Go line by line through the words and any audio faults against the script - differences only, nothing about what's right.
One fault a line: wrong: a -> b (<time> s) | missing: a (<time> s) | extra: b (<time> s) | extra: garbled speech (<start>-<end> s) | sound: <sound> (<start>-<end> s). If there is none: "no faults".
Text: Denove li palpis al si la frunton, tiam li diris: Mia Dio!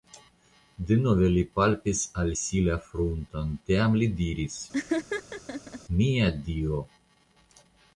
sound: laugh (4.7-5.8 s)